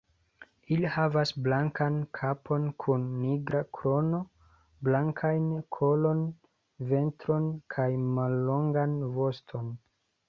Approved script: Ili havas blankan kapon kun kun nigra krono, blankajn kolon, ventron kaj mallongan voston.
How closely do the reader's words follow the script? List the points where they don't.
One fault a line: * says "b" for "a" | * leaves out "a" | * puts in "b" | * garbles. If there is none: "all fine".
* leaves out "kun"